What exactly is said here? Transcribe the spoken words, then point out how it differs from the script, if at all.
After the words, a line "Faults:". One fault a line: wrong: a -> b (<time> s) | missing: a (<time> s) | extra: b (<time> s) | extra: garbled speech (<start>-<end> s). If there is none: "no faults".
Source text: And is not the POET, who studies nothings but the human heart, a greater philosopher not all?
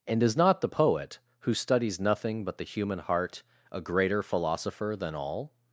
And is not the POET, who studies nothing but the human heart, a greater philosopher than all?
Faults:
wrong: nothings -> nothing (2.0 s)
wrong: not -> than (5.0 s)